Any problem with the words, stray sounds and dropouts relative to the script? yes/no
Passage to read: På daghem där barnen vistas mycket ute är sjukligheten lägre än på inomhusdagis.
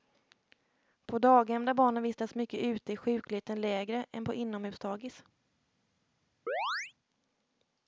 yes